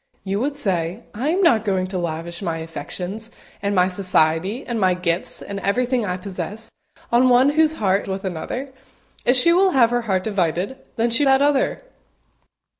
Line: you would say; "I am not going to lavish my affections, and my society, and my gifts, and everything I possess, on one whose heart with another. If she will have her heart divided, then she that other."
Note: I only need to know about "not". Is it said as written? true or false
true